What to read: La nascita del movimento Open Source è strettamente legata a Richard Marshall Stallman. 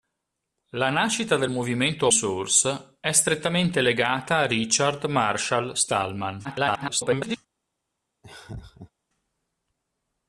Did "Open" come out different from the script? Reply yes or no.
yes